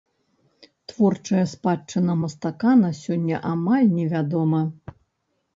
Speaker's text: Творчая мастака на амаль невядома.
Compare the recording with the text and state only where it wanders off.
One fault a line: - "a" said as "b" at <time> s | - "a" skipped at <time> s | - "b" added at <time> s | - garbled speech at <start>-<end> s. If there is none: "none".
- "спадчына" added at 1.5 s
- "сёння" added at 3.0 s